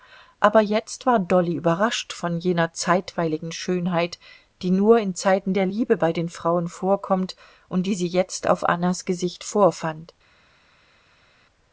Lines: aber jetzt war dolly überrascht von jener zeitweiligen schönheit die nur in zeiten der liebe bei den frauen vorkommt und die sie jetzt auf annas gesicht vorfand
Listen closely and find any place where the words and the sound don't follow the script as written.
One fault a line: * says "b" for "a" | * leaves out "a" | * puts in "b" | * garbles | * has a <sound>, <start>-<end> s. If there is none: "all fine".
all fine